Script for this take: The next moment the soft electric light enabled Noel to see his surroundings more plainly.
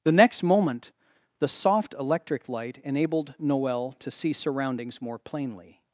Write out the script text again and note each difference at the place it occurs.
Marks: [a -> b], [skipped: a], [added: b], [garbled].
The next moment the soft electric light enabled Noel to see [skipped: his] surroundings more plainly.